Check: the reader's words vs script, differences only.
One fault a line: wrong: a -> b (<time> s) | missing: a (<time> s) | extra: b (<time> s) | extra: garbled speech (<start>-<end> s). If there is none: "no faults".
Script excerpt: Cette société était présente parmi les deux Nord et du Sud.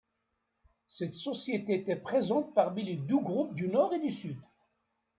extra: groupes du (3.2 s)